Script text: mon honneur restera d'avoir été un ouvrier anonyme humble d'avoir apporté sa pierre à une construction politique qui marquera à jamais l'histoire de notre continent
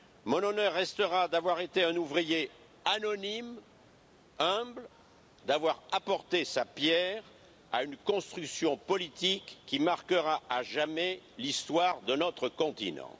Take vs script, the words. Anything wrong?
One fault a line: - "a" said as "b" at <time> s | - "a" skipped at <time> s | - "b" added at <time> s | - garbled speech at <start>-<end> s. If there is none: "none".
none